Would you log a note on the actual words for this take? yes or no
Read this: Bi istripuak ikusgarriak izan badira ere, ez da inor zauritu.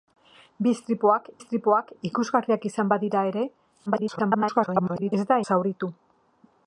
yes